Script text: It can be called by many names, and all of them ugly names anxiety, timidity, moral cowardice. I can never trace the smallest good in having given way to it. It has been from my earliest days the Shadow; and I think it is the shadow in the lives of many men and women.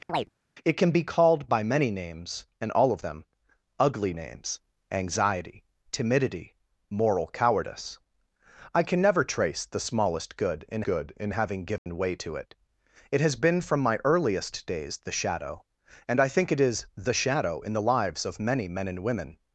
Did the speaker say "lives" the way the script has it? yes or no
yes